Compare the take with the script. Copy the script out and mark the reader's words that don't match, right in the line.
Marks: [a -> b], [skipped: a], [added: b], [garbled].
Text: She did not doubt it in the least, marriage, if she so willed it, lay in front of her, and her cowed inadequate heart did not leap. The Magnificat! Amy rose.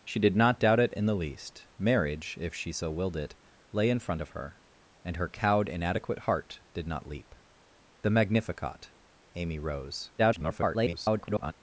She did not doubt it in the least, marriage, if she so willed it, lay in front of her, and her cowed inadequate heart did not leap. The Magnificat! Amy rose. [garbled]